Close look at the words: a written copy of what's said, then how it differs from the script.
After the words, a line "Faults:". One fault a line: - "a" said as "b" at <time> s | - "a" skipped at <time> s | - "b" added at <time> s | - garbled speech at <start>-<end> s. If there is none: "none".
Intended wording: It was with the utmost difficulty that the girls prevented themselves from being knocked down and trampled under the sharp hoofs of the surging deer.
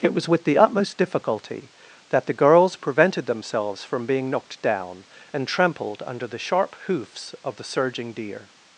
It was with the utmost difficulty that the girls prevented themselves from being knocked down and trampled under the sharp hoofs of the surging deer.
Faults:
none